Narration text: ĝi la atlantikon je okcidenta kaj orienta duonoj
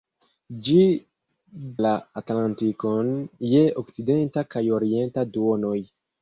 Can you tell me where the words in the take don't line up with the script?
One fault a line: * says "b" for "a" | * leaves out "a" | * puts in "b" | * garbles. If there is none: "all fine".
all fine